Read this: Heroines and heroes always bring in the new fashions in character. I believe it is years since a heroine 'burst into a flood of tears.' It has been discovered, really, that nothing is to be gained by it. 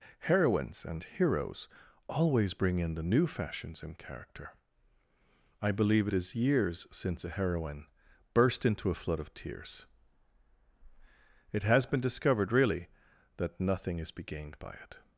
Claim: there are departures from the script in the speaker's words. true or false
true